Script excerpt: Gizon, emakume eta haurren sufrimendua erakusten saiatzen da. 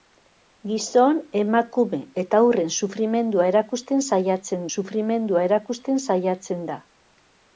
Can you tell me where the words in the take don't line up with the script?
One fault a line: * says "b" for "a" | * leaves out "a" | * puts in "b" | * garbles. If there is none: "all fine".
* puts in "sufrimendua erakusten saiatzen"